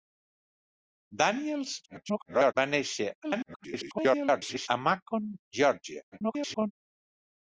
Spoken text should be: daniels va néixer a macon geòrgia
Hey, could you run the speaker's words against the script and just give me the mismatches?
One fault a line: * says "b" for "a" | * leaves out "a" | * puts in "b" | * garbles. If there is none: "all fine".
* garbles
* garbles
* garbles